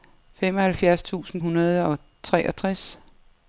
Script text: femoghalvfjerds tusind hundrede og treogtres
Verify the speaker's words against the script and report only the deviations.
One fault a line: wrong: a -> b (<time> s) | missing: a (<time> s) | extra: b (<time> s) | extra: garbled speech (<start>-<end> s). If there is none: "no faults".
no faults